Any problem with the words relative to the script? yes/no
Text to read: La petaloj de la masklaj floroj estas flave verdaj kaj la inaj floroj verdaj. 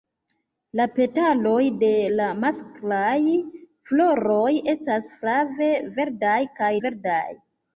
yes